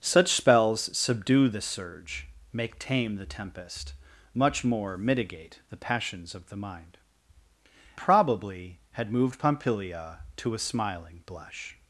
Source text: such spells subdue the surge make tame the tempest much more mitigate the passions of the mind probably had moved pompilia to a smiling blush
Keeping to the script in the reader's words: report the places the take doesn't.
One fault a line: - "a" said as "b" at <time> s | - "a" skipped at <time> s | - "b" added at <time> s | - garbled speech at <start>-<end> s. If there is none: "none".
none